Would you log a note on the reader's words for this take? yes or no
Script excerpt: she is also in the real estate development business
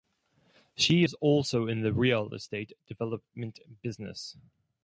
no